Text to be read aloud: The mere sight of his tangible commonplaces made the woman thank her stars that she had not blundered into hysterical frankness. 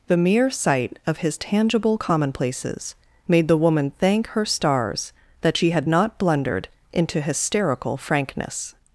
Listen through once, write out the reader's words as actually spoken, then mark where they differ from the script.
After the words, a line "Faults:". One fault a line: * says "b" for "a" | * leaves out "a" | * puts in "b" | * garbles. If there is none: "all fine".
The mere sight of his tangible commonplaces made the woman thank her stars that she had not blundered into hysterical frankness.
Faults:
all fine